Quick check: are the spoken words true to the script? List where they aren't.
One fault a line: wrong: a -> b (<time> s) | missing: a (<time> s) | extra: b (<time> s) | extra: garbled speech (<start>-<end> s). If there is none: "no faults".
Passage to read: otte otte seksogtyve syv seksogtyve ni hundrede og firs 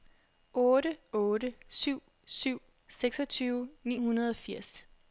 wrong: seksogtyve -> syv (1.7 s)